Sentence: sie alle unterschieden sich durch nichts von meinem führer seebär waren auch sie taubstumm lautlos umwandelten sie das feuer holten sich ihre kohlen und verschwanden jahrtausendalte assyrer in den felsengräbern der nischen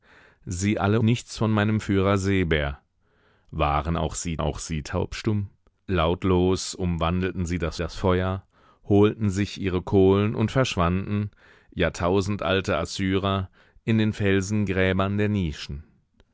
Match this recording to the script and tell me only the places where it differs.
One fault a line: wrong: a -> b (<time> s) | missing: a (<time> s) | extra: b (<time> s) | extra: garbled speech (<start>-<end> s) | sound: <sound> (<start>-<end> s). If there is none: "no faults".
missing: unterschieden sich durch (1.0 s)
extra: auch sie (4.4 s)
extra: das (7.8 s)